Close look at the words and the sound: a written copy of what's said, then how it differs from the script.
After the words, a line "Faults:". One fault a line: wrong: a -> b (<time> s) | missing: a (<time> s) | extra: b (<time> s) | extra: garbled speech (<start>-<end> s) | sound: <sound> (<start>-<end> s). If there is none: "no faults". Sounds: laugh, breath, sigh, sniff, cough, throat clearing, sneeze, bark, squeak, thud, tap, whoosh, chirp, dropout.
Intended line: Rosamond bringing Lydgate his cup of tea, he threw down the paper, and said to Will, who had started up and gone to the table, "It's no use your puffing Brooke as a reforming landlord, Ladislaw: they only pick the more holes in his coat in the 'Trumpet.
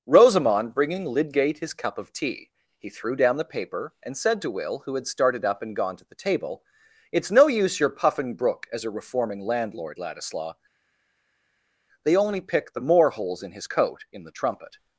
Rosamond bringing Lydgate his cup of tea, he threw down the paper, and said to Will, who had started up and gone to the table, "It's no use your puffing Brooke as a reforming landlord, Ladislaw: they only pick the more holes in his coat in the 'Trumpet.
Faults:
no faults